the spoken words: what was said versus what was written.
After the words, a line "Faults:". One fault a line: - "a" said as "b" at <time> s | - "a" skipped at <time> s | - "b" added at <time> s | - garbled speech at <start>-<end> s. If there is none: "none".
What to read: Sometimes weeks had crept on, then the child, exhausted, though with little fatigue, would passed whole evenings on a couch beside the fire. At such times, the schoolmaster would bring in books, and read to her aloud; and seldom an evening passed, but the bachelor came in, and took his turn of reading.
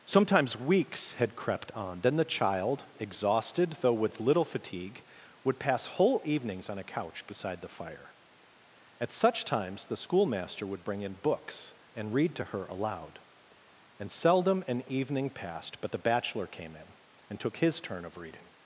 Sometimes weeks had crept on, then the child, exhausted, though with little fatigue, would pass whole evenings on a couch beside the fire. At such times, the schoolmaster would bring in books, and read to her aloud; and seldom an evening passed, but the bachelor came in, and took his turn of reading.
Faults:
- "passed" said as "pass" at 5.6 s